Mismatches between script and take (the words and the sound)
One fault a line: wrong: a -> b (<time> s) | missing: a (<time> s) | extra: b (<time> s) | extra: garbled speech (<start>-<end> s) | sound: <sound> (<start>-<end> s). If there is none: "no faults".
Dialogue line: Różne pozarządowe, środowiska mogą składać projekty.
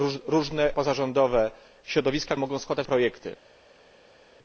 no faults